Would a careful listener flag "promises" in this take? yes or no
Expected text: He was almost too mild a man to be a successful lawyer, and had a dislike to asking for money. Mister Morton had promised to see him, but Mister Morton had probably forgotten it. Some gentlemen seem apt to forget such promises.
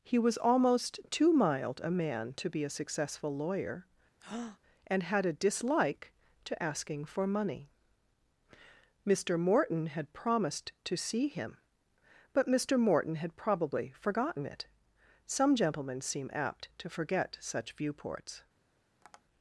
yes